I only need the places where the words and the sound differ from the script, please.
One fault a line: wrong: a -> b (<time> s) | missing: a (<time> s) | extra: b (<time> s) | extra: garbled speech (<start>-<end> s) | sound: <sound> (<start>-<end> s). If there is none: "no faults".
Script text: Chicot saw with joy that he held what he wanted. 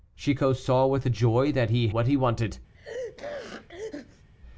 missing: held (1.9 s)
sound: sneeze (2.7-4.3 s)